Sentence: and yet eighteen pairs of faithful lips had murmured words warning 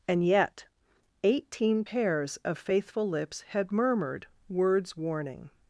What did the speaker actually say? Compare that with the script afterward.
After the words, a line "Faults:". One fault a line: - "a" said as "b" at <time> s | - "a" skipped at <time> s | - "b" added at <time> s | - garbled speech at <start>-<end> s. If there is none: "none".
and yet eighteen pairs of faithful lips had murmured words warning
Faults:
none